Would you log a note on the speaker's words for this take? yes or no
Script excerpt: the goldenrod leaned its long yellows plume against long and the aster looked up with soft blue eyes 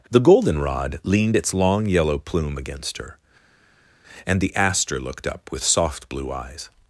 yes